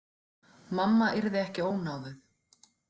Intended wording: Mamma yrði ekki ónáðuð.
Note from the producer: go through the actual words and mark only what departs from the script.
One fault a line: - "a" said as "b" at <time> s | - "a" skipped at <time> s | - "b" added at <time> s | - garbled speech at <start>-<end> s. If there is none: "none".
none